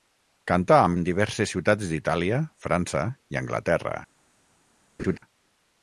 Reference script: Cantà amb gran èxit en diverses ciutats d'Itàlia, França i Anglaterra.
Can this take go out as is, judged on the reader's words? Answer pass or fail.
fail